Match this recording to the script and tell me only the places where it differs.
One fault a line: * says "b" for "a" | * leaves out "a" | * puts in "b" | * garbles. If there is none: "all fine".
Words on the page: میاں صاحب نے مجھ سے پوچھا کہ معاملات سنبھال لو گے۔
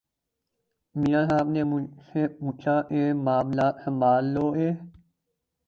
all fine